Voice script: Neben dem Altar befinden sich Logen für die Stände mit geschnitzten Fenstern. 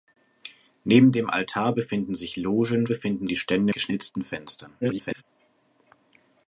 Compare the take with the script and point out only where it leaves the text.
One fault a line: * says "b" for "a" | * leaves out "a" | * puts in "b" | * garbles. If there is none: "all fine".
* says "befinden" for "für"
* leaves out "mit"
* garbles